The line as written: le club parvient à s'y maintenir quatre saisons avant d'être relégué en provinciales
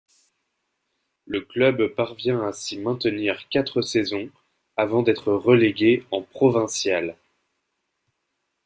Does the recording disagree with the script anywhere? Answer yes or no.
no